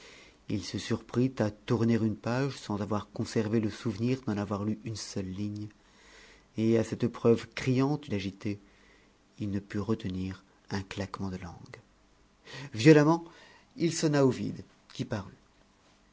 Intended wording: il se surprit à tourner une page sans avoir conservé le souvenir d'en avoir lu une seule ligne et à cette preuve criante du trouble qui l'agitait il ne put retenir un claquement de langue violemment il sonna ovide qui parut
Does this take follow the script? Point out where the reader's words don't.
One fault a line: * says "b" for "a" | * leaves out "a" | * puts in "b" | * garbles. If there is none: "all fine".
* leaves out "du trouble qui"